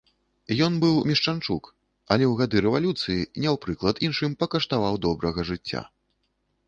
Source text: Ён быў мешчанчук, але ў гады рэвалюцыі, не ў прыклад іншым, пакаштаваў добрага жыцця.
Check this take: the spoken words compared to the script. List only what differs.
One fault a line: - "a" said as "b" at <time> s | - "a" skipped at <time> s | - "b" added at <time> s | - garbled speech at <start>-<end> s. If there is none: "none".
none